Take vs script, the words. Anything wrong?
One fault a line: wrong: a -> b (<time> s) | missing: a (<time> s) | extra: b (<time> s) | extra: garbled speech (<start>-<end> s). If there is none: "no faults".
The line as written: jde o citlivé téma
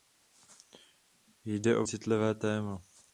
no faults